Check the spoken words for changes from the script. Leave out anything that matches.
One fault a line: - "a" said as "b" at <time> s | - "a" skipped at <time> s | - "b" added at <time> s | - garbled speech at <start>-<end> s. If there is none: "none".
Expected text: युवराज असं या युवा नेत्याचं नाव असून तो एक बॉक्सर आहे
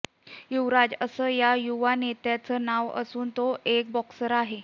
none